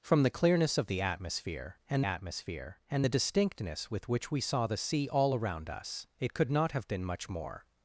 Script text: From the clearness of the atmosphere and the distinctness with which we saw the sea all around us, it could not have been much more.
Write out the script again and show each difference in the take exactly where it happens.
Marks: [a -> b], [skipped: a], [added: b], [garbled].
From the clearness of the atmosphere and [added: atmosphere and] the distinctness with which we saw the sea all around us, it could not have been much more.